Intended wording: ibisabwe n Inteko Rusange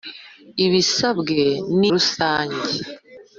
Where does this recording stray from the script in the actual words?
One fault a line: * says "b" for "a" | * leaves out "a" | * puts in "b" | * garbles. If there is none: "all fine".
* leaves out "Inteko"